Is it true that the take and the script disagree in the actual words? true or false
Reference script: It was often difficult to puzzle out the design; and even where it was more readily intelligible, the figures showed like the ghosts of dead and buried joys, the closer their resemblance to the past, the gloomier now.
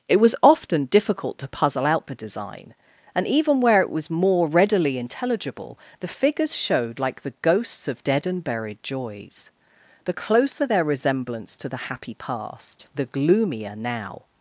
true